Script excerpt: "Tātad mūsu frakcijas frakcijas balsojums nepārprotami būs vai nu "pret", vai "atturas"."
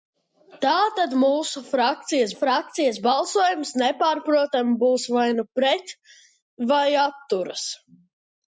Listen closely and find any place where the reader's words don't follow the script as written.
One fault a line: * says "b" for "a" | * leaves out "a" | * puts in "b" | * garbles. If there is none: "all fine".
all fine